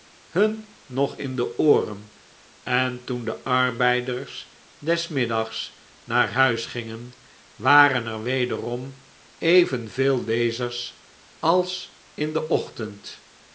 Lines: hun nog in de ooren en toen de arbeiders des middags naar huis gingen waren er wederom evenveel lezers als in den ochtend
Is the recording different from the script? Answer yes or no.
no